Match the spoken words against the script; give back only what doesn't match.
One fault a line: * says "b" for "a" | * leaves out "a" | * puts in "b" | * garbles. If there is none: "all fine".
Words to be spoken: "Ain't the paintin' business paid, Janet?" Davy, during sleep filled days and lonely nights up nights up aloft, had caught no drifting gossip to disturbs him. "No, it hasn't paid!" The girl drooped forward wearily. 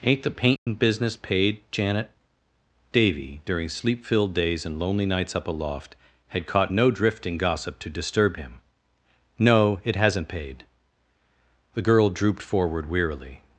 * leaves out "nights up"
* says "disturb" for "disturbs"